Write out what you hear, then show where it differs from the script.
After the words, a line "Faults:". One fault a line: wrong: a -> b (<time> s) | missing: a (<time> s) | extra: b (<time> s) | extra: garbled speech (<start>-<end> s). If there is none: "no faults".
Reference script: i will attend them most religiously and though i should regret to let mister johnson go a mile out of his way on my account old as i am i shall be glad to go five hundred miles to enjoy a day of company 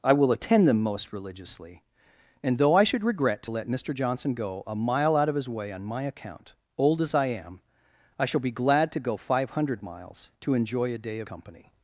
i will attend them most religiously and though i should regret to let mister johnson go a mile out of his way on my account old as i am i shall be glad to go five hundred miles to enjoy a day of company
Faults:
no faults